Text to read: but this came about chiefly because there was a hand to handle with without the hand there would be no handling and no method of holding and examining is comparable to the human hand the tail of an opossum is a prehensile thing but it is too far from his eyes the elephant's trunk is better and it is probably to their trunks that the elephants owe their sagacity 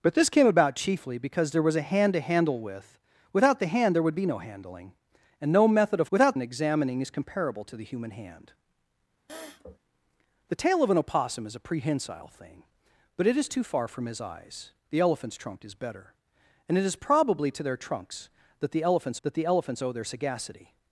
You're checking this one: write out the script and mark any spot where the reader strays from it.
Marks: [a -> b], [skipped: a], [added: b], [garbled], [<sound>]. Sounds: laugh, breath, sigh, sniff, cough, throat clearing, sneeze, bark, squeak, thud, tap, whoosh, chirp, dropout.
but this came about chiefly because there was a hand to handle with without the hand there would be no handling and no method of [holding -> without] and examining is comparable to the human hand [sniff] the tail of an opossum is a prehensile thing but it is too far from his eyes the elephant's trunk is better and it is probably to their trunks that the elephants [added: that the elephants] owe their sagacity